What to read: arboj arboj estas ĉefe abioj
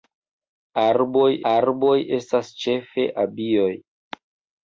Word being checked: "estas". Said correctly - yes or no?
yes